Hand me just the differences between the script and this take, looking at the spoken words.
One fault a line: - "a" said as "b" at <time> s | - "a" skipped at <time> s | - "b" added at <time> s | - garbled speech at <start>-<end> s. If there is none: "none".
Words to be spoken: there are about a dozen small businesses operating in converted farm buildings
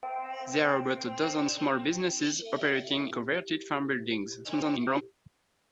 - "in" skipped at 3.1 s
- garbled speech at 4.4-5.0 s